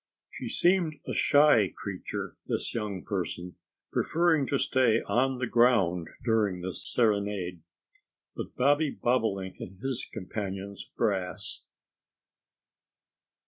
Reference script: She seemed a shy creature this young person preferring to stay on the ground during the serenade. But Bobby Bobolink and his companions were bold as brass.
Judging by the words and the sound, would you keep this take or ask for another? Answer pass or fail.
fail